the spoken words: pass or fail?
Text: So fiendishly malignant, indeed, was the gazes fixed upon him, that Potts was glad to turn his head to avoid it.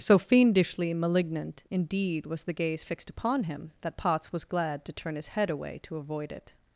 fail